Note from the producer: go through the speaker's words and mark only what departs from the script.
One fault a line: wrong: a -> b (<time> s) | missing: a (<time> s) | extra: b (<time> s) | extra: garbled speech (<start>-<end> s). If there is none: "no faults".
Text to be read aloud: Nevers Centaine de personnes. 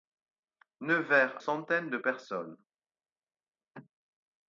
no faults